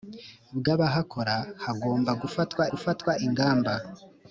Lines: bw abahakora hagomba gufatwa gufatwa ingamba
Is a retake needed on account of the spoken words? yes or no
no